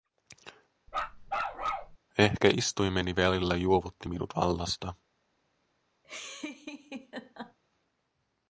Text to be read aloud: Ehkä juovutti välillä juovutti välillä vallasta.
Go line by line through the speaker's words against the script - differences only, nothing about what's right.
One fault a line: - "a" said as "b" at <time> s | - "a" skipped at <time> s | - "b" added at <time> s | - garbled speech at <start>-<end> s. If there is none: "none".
- "juovutti" said as "istuimeni" at 2.6 s
- "välillä" said as "minut" at 4.1 s